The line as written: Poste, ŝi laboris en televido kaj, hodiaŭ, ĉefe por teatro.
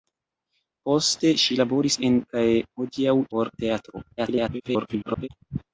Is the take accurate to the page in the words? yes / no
no